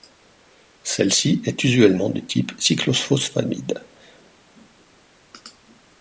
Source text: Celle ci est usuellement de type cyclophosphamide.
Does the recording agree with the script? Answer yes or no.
yes